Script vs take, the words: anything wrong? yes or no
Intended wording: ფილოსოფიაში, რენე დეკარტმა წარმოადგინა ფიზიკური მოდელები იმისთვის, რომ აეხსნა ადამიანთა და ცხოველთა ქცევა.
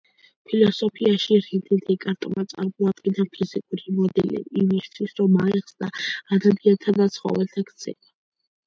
no